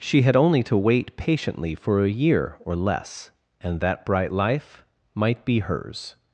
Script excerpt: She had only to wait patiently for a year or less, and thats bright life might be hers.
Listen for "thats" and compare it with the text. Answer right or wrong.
wrong